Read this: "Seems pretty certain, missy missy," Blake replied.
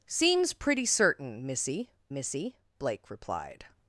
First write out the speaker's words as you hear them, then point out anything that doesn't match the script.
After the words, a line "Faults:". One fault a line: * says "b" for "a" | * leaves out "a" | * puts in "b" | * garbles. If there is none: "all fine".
"Seems pretty certain, missy missy," Blake replied.
Faults:
all fine